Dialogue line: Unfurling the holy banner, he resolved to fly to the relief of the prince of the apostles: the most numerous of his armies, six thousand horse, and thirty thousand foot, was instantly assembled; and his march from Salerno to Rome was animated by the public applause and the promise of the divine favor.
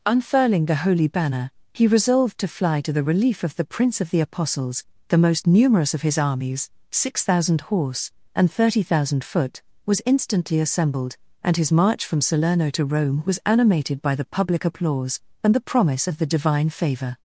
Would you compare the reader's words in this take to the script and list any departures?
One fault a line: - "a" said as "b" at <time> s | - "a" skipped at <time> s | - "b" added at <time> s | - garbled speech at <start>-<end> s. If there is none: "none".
none